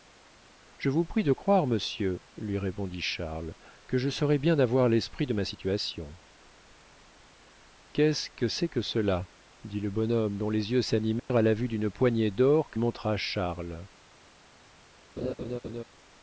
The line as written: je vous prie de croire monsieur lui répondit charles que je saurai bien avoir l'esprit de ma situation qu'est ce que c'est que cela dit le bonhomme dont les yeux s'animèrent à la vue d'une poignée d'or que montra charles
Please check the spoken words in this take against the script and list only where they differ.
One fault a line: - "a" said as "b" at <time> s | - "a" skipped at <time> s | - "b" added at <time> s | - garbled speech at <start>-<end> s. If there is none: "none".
none